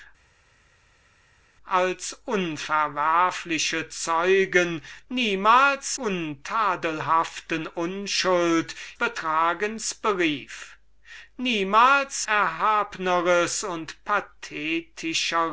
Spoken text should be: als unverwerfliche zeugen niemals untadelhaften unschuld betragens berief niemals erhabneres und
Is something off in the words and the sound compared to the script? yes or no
no